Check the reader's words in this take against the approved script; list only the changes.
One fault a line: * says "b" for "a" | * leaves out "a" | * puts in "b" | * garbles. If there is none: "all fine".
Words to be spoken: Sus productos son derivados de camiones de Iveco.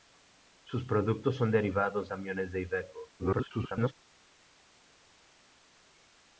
* leaves out "de"
* garbles